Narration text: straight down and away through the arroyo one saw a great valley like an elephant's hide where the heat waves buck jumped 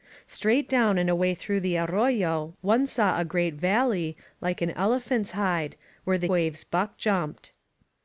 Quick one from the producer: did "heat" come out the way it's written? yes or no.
no